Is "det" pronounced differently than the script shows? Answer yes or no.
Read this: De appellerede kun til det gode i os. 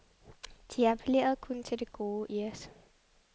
no